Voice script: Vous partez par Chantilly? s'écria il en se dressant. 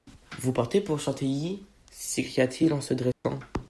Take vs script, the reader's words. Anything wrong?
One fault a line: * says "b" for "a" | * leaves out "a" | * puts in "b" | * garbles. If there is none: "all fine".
* says "pour" for "par"
* puts in "t"